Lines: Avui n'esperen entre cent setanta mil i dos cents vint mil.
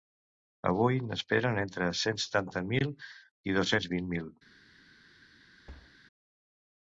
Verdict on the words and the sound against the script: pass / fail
fail